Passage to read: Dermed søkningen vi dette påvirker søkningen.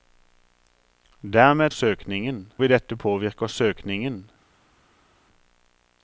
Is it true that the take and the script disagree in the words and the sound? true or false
false